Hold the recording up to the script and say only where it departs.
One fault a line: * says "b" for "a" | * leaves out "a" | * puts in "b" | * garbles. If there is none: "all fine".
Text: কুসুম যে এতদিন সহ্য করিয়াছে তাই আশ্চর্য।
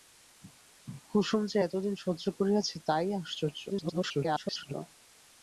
* garbles